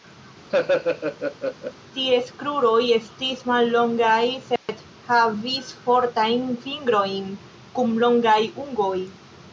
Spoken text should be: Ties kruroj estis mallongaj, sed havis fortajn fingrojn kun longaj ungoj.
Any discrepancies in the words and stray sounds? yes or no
yes